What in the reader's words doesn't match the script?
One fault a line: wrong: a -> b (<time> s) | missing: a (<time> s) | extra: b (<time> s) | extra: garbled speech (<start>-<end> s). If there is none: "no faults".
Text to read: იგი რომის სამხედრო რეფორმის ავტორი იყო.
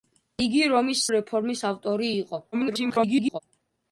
missing: სამხედრო (1.0 s)
extra: garbled speech (2.5-3.4 s)